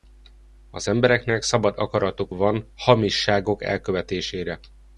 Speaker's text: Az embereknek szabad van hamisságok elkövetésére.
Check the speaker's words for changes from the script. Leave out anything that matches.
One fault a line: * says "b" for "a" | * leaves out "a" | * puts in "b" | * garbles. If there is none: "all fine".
* puts in "akaratuk"